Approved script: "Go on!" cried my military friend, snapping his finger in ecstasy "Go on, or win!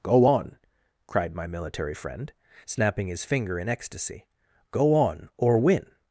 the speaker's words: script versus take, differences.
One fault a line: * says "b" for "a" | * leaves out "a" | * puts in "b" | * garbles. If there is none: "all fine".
all fine